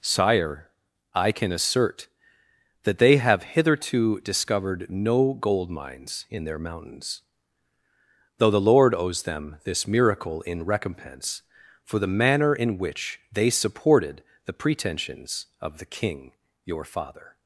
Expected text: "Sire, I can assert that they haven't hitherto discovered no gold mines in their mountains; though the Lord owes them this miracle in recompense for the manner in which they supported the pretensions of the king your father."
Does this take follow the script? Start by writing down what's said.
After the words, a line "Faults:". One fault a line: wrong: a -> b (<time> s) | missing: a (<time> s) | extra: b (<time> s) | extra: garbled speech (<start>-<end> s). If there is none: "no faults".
"Sire, I can assert that they have hitherto discovered no gold mines in their mountains; though the Lord owes them this miracle in recompense for the manner in which they supported the pretensions of the king your father."
Faults:
wrong: haven't -> have (3.2 s)